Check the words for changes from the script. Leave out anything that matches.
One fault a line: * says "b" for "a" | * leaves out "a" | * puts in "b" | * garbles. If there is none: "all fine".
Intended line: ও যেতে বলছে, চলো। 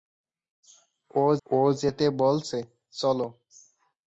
* puts in "ও"